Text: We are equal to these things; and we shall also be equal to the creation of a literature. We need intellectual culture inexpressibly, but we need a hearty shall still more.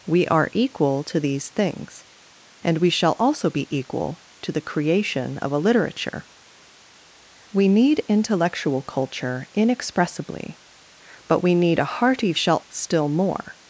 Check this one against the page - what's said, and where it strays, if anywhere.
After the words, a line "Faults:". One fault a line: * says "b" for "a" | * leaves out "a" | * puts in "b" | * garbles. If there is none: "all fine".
We are equal to these things; and we shall also be equal to the creation of a literature. We need intellectual culture inexpressibly, but we need a hearty shall still more.
Faults:
all fine